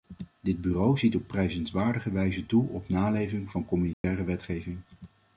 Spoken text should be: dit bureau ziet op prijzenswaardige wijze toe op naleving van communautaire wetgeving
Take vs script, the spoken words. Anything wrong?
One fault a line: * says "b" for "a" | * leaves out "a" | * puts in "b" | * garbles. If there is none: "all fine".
all fine